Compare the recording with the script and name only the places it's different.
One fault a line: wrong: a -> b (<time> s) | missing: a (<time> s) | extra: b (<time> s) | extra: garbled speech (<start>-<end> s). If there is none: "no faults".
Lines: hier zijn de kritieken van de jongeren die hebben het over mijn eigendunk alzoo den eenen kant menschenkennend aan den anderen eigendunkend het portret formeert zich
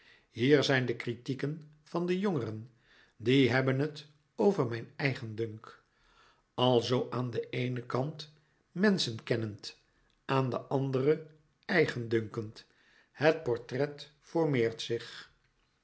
extra: aan (7.1 s)